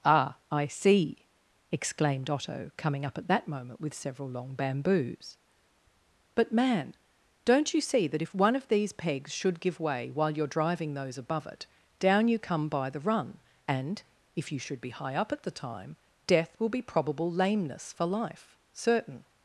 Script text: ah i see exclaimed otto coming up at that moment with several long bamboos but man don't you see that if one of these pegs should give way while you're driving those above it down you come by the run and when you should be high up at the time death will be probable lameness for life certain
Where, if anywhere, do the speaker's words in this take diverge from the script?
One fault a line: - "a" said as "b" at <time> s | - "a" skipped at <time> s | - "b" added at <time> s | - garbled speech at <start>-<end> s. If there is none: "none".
- "when" said as "if" at 14.3 s